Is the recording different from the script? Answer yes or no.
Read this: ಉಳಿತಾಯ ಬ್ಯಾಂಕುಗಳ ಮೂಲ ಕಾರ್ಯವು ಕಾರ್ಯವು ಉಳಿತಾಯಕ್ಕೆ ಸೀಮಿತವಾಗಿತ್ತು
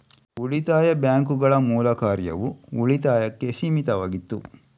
yes